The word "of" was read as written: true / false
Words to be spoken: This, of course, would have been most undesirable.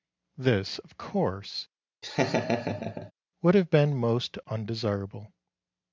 true